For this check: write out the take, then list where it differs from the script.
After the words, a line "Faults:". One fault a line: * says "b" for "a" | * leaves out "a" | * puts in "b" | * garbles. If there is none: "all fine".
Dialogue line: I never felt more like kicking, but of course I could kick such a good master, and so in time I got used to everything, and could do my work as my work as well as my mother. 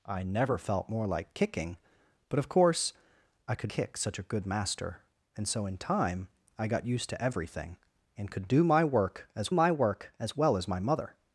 I never felt more like kicking, but of course I could kick such a good master, and so in time I got used to everything, and could do my work as my work as well as my mother.
Faults:
all fine